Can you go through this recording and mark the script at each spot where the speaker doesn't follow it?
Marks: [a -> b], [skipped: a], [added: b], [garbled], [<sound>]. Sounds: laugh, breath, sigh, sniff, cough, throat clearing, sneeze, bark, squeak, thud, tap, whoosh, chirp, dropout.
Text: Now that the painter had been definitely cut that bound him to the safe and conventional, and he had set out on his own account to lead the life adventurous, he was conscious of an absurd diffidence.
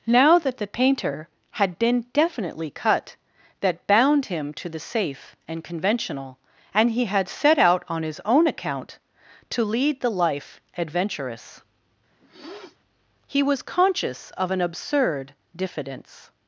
Now that the painter had been definitely cut that bound him to the safe and conventional, and he had set out on his own account to lead the life adventurous, [sniff] he was conscious of an absurd diffidence.